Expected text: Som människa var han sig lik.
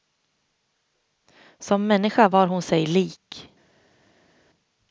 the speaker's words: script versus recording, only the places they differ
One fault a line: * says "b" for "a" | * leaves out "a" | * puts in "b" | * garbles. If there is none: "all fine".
* says "hon" for "han"